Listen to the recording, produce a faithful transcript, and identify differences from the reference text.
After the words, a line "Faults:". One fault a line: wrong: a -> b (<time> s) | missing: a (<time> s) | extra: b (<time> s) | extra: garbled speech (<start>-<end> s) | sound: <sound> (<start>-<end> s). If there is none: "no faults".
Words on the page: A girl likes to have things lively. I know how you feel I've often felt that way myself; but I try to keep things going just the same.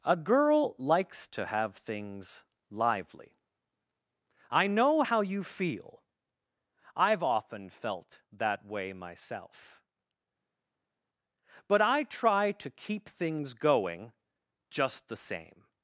A girl likes to have things lively. I know how you feel I've often felt that way myself; but I try to keep things going just the same.
Faults:
no faults